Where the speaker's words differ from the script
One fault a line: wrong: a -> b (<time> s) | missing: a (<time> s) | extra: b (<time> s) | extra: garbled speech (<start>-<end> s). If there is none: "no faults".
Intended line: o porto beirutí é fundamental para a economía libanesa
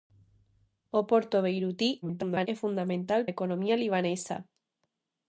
extra: garbled speech (2.0-2.5 s)
missing: para (3.2 s)